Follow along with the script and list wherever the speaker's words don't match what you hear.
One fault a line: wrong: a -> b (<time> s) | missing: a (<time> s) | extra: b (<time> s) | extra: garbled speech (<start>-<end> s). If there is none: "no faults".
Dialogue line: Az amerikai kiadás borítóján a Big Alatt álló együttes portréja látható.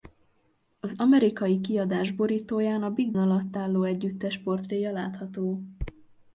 no faults